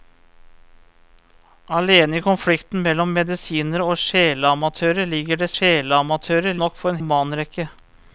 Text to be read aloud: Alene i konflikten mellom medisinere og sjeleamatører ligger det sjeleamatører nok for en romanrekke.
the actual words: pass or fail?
pass